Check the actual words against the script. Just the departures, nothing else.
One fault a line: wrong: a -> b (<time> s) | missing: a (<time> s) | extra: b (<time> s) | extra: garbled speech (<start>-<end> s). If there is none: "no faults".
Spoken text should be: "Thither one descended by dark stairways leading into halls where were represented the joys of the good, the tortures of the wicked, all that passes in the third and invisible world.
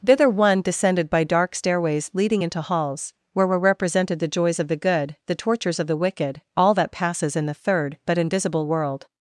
wrong: and -> but (8.1 s)